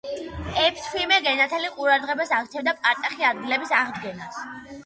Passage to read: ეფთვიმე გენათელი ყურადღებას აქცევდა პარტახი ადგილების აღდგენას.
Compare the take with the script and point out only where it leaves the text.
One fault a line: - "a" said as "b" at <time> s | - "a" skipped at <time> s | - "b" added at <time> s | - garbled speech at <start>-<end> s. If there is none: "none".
none